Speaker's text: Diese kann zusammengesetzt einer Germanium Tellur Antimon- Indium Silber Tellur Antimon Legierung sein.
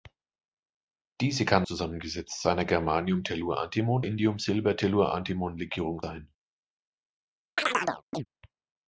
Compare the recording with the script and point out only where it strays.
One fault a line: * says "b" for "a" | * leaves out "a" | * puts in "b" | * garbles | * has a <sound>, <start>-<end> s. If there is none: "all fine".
* has a chirp, 7.6-8.3 s